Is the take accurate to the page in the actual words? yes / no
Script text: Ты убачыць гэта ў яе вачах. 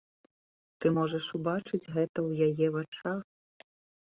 no